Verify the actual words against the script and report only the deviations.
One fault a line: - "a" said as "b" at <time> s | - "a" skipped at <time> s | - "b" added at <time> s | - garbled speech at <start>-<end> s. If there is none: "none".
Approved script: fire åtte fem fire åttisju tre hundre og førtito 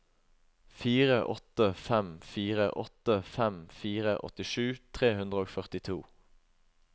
- "åtte fem fire" added at 2.8 s